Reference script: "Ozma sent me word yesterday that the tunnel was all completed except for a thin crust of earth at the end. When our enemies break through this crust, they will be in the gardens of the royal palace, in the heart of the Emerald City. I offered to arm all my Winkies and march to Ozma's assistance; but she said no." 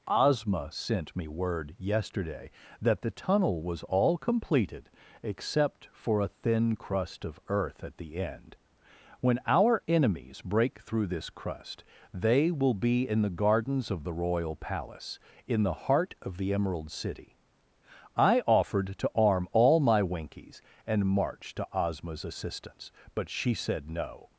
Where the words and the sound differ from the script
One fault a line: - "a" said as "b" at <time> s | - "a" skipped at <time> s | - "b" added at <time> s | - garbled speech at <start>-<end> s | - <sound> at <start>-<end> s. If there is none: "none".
none